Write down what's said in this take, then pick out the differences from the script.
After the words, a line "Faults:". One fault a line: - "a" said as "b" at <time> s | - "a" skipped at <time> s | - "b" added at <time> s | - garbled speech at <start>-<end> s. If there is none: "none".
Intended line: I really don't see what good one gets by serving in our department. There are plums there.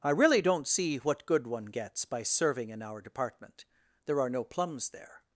I really don't see what good one gets by serving in our department. There are no plums there.
Faults:
- "no" added at 4.3 s